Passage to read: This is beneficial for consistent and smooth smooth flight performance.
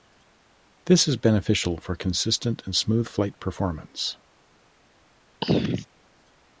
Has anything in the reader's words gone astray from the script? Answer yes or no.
yes